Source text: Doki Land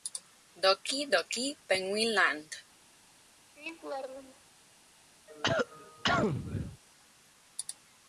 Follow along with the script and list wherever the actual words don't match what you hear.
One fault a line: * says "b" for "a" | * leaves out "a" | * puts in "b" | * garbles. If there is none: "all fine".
* puts in "Doki Penguin"